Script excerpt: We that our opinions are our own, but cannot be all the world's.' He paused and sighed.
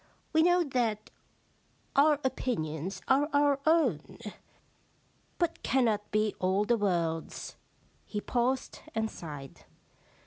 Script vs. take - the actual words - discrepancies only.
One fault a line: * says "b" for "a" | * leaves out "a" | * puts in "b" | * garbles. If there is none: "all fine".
* puts in "know"